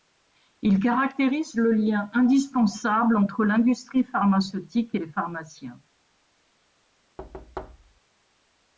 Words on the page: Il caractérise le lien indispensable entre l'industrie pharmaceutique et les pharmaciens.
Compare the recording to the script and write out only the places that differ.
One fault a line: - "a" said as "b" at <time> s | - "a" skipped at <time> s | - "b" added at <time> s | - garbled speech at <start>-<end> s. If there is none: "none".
none